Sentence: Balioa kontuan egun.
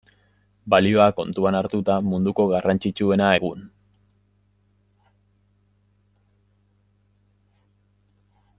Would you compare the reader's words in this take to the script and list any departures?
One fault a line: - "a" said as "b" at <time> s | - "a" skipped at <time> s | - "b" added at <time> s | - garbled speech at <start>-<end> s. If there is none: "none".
- "hartuta munduko garrantzitsuena" added at 1.6 s